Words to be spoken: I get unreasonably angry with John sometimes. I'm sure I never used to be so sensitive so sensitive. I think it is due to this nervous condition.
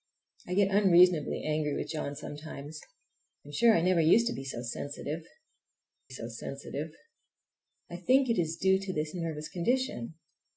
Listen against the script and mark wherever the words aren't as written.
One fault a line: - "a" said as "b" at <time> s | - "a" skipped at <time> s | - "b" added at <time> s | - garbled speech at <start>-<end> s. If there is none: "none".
none